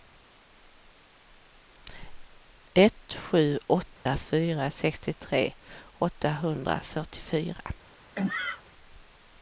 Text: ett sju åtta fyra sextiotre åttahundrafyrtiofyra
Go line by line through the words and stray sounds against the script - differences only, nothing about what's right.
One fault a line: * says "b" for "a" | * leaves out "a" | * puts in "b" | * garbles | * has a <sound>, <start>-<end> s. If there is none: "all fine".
* has a dropout, 4.0-4.1 s
* has a sneeze, 8.2-8.6 s